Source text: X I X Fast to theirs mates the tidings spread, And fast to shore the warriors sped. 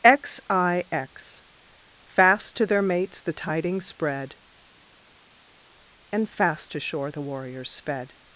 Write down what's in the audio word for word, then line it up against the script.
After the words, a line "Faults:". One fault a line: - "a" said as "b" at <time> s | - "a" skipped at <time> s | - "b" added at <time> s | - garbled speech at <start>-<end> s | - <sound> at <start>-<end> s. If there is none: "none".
X I X Fast to their mates the tidings spread, And fast to shore the warriors sped.
Faults:
- "theirs" said as "their" at 2.6 s